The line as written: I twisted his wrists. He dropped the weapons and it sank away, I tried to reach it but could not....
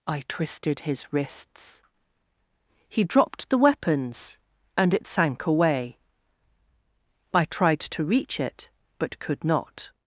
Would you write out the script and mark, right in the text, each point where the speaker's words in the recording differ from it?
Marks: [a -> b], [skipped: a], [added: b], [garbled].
I twisted his wrists. He dropped the weapons and it sank away, I tried to reach it but could not....